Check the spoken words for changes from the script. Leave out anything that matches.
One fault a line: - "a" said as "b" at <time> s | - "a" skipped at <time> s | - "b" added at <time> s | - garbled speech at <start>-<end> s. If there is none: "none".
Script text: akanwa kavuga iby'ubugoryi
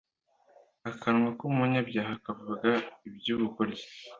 - "k'umunyabyaha" added at 1.4 s